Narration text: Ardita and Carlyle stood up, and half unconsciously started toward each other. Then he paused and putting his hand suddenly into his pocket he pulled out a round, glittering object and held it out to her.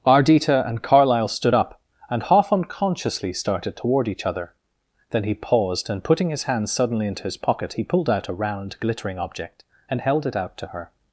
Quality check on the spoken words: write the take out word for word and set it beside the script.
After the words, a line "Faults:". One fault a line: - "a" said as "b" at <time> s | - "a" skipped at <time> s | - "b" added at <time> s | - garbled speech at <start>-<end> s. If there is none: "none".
Ardita and Carlyle stood up, and half unconsciously started toward each other. Then he paused and putting his hand suddenly into his pocket he pulled out a round, glittering object and held it out to her.
Faults:
none